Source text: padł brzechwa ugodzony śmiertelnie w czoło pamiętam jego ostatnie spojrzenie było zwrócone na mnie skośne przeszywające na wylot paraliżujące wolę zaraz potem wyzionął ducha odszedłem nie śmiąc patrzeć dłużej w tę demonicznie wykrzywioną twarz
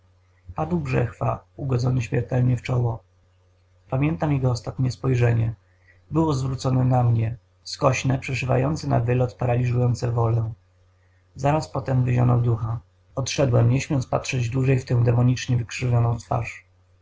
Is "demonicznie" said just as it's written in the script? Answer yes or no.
yes